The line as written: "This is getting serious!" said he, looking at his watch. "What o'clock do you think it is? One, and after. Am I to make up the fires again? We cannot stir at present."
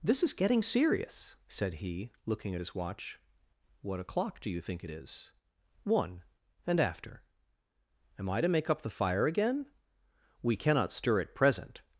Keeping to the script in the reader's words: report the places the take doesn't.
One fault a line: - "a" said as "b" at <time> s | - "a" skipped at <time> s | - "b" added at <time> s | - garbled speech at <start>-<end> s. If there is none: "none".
- "fires" said as "fire" at 8.9 s